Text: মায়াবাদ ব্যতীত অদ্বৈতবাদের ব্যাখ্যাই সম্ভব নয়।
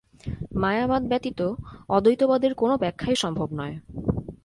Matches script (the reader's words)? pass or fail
fail